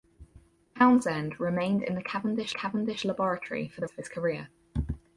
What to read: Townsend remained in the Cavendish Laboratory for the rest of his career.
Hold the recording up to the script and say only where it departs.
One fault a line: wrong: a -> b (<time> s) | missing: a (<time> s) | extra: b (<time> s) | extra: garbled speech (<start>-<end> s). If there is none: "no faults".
extra: Cavendish (2.5 s)
missing: rest (3.9 s)